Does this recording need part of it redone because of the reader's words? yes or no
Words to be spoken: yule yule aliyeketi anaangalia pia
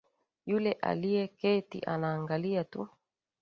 yes